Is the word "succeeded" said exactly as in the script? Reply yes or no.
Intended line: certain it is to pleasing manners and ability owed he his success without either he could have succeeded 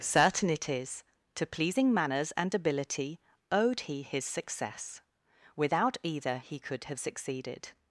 yes